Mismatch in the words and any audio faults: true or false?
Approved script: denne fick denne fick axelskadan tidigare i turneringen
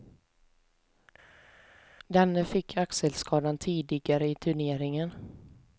true